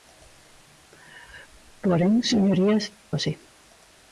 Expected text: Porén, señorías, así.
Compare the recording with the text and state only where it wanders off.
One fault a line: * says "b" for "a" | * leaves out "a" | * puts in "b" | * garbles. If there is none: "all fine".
all fine